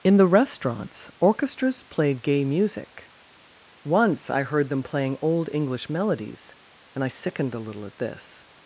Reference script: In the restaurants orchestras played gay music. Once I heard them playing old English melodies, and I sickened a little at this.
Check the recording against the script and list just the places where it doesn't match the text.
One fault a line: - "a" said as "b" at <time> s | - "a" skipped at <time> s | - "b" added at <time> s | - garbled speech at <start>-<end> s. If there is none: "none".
none